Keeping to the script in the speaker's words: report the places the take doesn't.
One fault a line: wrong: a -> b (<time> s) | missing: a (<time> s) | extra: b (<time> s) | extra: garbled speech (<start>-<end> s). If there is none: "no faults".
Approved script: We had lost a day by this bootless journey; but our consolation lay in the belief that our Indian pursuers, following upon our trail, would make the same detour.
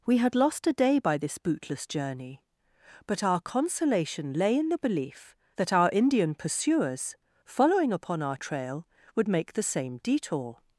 no faults